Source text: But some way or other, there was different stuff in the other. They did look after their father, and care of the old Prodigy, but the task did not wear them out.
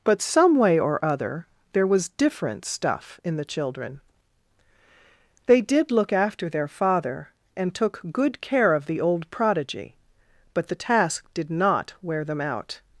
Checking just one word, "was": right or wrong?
right